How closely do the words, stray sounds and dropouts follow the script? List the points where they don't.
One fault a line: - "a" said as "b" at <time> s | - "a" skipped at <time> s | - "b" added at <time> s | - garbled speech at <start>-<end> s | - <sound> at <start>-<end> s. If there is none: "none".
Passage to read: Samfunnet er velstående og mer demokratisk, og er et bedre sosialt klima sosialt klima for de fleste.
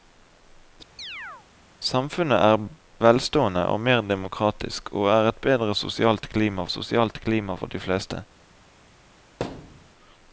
- chirp at 1.0-1.5 s
- thud at 9.4-9.9 s